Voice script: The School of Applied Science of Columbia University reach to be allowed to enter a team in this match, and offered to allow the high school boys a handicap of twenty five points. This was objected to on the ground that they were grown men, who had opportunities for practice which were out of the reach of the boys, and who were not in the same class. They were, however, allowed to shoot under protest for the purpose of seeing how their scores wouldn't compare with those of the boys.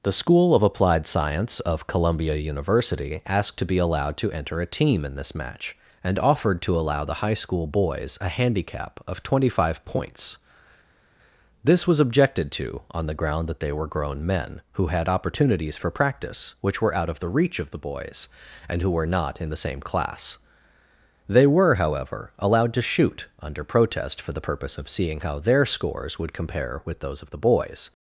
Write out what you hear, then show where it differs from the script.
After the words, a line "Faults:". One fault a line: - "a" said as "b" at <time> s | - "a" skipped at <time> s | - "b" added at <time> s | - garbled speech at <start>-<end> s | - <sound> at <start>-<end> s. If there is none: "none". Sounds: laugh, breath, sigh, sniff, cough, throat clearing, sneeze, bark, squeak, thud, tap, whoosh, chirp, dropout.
The School of Applied Science of Columbia University asked to be allowed to enter a team in this match, and offered to allow the high school boys a handicap of twenty five points. This was objected to on the ground that they were grown men, who had opportunities for practice which were out of the reach of the boys, and who were not in the same class. They were, however, allowed to shoot under protest for the purpose of seeing how their scores would compare with those of the boys.
Faults:
- "reach" said as "asked" at 3.3 s
- "wouldn't" said as "would" at 26.2 s